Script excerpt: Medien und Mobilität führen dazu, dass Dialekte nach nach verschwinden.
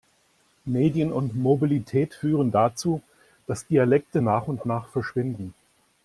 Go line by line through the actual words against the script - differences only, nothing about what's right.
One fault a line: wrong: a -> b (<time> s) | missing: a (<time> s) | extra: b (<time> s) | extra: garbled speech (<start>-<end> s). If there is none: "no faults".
extra: und (4.5 s)